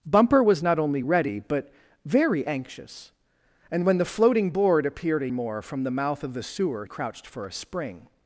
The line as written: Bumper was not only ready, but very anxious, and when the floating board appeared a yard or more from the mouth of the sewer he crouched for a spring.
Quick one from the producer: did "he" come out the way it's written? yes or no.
no